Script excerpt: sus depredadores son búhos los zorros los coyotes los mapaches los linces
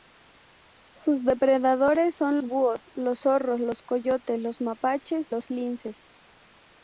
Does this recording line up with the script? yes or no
yes